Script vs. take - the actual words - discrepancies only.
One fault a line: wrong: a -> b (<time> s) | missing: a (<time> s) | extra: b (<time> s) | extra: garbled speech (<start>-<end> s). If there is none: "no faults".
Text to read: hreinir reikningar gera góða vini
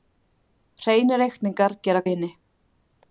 missing: góða (2.0 s)